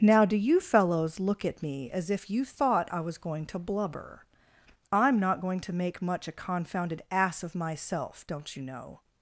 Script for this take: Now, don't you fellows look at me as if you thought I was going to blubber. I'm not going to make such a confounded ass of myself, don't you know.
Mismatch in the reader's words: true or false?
true